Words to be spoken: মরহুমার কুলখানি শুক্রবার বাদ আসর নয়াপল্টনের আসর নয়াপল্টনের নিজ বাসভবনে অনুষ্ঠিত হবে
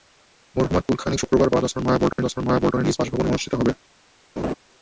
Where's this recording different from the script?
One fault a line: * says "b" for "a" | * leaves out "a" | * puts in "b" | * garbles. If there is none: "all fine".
all fine